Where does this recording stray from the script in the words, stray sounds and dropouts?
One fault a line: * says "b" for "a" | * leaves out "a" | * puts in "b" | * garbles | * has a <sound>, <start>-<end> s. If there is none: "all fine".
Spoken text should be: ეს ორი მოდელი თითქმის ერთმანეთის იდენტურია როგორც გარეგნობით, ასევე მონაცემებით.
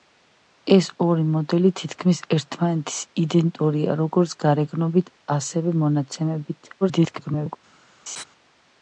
* garbles
* has a laugh, 8.1-8.2 s